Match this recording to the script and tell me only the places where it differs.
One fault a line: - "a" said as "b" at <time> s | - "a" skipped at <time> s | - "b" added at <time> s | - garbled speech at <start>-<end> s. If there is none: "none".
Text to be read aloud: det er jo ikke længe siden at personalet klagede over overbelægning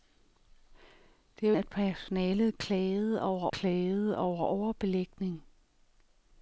- "ikke længe siden at personalet" said as "at personalet klagede over" at 1.5 s